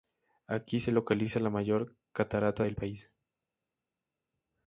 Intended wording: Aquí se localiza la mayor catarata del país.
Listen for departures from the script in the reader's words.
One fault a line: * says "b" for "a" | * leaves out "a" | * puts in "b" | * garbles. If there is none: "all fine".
all fine